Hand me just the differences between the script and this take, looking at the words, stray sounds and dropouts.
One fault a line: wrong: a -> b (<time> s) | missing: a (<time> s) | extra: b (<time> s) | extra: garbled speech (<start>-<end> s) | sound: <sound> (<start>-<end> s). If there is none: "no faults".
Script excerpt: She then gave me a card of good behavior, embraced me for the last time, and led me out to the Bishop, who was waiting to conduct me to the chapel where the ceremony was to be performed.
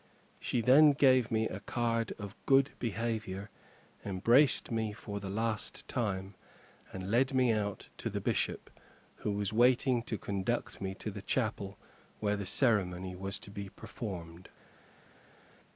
no faults